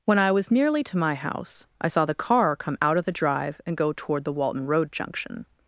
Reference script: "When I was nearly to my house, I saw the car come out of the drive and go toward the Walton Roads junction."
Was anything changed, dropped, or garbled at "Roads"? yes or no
yes